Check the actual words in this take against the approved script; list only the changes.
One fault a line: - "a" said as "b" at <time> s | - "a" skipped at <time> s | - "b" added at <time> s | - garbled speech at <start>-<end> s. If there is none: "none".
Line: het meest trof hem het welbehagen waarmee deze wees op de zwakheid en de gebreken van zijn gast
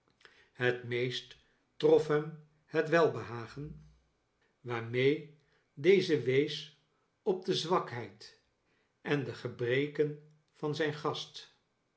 none